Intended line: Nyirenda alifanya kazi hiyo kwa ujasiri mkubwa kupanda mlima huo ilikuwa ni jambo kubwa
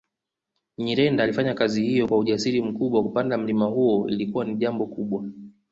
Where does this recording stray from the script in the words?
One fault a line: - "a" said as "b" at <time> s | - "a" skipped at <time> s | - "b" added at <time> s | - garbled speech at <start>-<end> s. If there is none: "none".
none